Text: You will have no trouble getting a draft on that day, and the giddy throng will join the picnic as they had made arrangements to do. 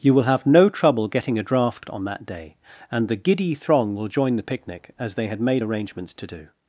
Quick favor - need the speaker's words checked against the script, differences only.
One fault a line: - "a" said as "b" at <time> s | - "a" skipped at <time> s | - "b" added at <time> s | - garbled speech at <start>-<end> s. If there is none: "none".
none